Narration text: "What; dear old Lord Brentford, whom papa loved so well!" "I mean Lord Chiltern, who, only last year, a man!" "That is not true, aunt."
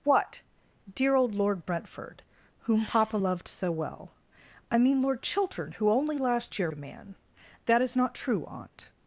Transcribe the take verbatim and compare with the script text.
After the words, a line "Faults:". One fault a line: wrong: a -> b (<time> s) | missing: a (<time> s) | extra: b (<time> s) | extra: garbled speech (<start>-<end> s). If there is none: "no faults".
"What; dear old Lord Brentford, whom papa loved so well!" "I mean Lord Chiltern, who, only last year, a man!" "That is not true, aunt."
Faults:
no faults